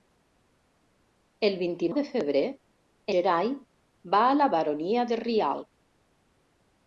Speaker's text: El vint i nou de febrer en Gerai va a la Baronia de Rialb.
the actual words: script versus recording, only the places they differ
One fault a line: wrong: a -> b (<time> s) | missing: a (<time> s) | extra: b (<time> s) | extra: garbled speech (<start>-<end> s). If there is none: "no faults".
missing: nou (1.9 s)
missing: en (2.4 s)